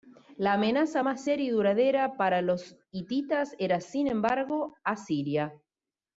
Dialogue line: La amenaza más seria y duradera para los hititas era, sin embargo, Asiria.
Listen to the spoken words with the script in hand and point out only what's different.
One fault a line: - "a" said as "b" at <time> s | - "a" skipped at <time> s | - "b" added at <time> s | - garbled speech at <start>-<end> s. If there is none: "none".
none